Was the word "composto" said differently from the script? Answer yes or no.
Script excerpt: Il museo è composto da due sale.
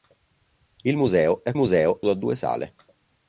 yes